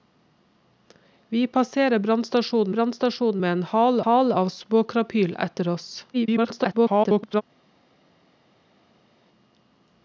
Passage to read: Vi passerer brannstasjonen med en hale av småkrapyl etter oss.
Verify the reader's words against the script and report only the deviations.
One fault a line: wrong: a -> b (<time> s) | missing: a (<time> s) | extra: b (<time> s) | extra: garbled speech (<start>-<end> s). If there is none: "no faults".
extra: brannstasjonen (2.7 s)
extra: hale (4.0 s)
extra: garbled speech (6.1-7.4 s)